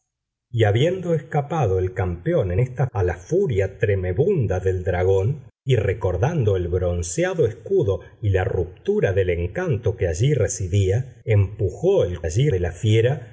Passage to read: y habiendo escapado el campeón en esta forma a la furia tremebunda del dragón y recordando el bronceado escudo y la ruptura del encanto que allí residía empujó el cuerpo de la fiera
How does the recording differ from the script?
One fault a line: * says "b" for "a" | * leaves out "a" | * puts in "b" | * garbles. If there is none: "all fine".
* leaves out "forma"
* says "allí" for "cuerpo"